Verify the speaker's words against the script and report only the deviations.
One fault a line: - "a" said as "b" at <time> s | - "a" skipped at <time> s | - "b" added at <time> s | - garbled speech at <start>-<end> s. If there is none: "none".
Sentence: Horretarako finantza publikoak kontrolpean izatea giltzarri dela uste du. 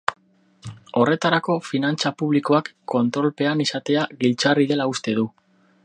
none